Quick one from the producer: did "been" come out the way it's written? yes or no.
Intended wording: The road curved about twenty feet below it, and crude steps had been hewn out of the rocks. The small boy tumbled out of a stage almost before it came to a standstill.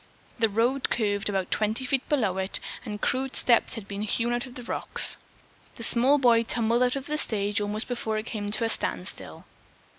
yes